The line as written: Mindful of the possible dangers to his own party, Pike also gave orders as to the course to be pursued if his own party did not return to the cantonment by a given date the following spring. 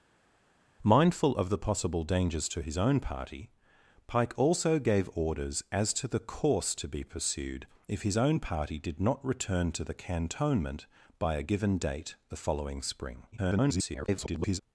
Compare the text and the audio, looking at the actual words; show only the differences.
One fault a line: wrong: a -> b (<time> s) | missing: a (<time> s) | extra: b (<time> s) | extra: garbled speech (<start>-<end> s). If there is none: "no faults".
extra: garbled speech (13.3-14.6 s)